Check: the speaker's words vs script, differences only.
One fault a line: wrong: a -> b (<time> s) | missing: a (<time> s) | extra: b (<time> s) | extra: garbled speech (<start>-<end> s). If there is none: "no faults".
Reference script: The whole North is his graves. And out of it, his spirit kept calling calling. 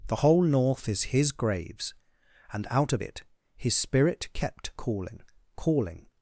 no faults